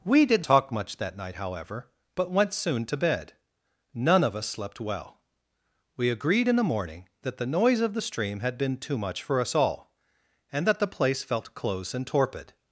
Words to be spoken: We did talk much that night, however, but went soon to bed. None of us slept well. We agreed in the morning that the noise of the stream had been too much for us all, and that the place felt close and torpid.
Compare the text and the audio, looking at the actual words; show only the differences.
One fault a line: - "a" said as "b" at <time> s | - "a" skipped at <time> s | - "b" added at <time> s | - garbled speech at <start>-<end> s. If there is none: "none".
none